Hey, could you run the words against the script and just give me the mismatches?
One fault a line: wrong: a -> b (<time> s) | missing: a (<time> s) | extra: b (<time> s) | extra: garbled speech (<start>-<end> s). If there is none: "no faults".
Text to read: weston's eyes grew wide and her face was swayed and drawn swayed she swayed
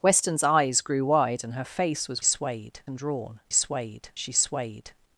no faults